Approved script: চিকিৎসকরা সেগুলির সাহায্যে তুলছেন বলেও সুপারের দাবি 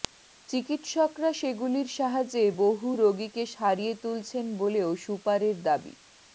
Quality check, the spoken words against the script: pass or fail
fail